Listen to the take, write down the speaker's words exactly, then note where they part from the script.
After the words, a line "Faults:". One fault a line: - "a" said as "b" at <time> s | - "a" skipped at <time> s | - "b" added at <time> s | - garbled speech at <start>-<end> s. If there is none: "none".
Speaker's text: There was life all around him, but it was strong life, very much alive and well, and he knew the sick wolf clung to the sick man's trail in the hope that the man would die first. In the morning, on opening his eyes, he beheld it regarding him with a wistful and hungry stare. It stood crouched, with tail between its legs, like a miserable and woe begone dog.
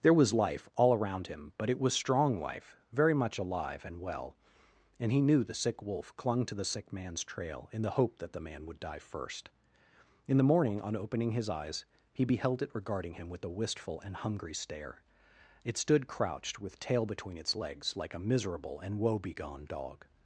There was life all around him, but it was strong life, very much alive and well, and he knew the sick wolf clung to the sick man's trail in the hope that the man would die first. In the morning, on opening his eyes, he beheld it regarding him with a wistful and hungry stare. It stood crouched, with tail between its legs, like a miserable and woe begone dog.
Faults:
none